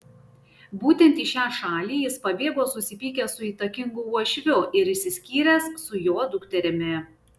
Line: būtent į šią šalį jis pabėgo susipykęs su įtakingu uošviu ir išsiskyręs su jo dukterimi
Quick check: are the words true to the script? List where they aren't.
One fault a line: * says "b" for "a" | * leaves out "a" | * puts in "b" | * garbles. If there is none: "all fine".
all fine